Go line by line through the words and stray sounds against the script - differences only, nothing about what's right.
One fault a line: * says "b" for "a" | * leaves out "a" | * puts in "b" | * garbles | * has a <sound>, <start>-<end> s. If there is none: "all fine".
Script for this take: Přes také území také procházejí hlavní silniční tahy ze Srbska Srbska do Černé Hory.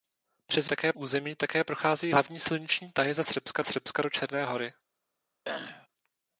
* has a throat clearing, 5.4-5.9 s